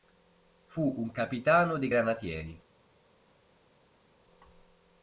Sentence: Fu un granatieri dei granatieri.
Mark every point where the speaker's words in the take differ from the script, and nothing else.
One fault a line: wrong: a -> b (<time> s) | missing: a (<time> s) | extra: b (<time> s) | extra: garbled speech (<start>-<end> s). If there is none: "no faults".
wrong: granatieri -> capitano (1.1 s)